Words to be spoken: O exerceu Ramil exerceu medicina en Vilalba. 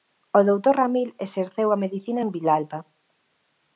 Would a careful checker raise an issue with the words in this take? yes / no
yes